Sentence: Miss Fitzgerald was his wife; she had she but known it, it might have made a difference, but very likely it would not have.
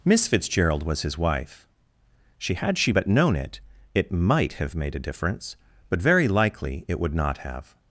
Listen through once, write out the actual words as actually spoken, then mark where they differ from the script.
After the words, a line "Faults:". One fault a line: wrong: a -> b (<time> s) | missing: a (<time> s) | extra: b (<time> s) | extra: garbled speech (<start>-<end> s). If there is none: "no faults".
Miss Fitzgerald was his wife; she had she but known it, it might have made a difference, but very likely it would not have.
Faults:
no faults